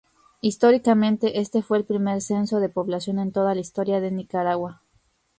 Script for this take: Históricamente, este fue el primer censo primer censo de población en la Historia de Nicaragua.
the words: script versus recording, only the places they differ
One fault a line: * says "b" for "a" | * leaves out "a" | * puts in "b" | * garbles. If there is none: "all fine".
* leaves out "primer censo"
* puts in "toda"